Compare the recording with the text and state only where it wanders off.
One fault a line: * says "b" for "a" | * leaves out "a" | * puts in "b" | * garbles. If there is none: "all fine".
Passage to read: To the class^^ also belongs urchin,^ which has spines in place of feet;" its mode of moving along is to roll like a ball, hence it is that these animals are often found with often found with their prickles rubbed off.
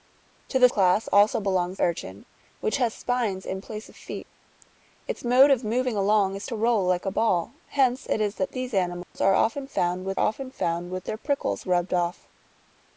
all fine